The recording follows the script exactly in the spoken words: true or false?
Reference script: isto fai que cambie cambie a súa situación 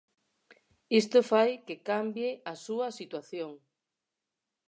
false